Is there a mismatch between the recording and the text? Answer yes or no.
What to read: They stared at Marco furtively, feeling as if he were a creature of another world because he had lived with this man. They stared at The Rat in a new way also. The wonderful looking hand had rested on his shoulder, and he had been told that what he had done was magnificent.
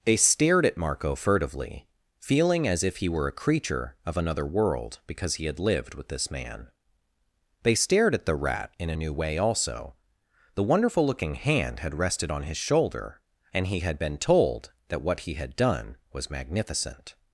no